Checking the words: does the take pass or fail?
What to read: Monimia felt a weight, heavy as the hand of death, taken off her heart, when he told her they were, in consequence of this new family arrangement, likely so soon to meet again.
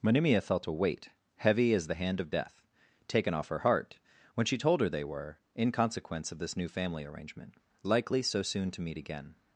fail